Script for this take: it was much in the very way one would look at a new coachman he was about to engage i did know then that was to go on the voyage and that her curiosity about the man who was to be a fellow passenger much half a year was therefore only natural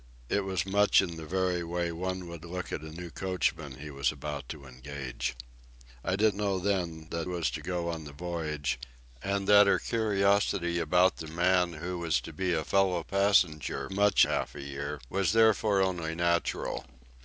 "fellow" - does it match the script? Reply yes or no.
yes